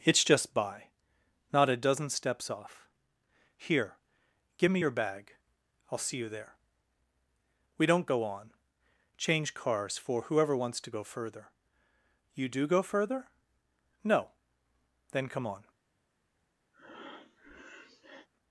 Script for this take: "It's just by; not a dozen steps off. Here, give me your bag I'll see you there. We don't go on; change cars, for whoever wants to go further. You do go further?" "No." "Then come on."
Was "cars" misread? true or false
false